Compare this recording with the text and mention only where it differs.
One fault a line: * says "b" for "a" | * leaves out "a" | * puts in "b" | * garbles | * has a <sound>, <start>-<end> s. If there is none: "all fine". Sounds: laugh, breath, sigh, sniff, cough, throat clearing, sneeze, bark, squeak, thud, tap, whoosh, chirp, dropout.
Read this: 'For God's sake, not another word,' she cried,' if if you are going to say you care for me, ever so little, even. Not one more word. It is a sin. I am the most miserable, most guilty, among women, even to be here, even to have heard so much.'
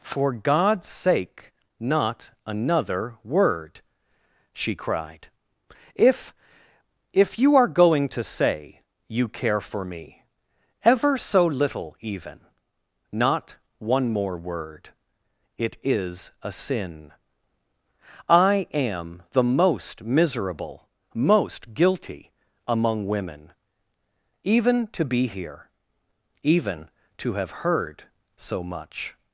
all fine